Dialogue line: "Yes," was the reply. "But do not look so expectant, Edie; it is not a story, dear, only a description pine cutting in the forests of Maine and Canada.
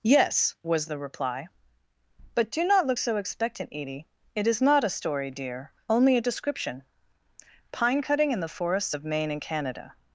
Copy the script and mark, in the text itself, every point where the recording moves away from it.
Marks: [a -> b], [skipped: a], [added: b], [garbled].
"Yes," was the reply. "But do not look so expectant, Edie; it is not a story, dear, only a description pine cutting in the forests of Maine and Canada.